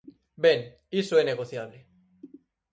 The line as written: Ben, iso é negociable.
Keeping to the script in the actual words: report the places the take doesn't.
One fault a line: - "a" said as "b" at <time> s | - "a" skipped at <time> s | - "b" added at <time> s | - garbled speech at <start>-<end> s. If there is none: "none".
none